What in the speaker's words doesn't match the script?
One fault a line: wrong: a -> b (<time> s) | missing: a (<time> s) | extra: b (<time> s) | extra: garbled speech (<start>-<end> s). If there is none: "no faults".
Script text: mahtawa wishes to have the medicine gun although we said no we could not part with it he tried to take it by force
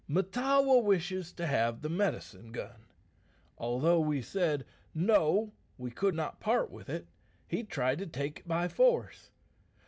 no faults